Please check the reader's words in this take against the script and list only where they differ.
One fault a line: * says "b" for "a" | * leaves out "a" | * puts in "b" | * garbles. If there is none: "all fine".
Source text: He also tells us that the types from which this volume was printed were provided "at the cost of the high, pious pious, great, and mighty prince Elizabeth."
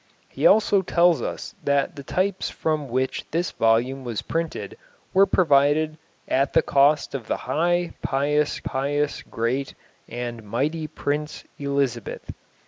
all fine